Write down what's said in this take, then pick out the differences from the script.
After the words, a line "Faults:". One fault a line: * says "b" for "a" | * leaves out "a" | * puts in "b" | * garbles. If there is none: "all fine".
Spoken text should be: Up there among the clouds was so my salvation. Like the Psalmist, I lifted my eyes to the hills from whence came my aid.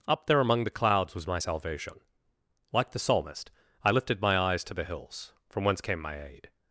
Up there among the clouds was my salvation. Like the Psalmist, I lifted my eyes to the hills from whence came my aid.
Faults:
* leaves out "so"